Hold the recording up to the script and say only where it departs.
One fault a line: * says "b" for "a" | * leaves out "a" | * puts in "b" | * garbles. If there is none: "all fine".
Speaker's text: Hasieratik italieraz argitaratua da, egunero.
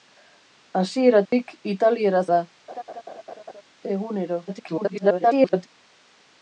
* leaves out "argitaratua"
* garbles